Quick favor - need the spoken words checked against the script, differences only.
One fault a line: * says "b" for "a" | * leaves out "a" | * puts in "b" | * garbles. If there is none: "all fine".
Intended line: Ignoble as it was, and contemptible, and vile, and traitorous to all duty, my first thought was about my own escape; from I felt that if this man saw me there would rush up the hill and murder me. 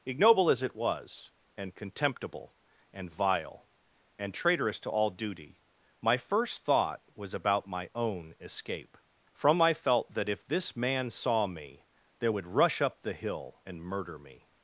all fine